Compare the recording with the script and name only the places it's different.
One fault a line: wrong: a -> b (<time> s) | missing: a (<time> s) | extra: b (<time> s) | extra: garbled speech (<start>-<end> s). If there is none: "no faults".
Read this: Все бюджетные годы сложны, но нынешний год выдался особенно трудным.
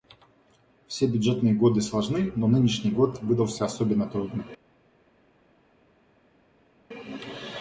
no faults